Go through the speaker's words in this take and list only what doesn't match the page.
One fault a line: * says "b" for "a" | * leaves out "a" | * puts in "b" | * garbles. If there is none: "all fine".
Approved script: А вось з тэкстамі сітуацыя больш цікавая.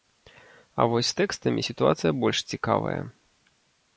all fine